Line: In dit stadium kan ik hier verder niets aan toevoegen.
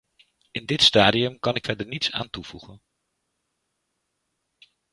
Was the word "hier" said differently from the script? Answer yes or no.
yes